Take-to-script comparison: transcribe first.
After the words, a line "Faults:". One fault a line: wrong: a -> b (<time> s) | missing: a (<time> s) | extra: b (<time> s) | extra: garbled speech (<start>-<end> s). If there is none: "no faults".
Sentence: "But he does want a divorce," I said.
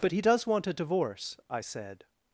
"But he does want a divorce," I said.
Faults:
no faults